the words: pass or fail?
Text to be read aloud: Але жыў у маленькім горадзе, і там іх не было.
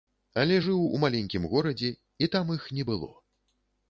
pass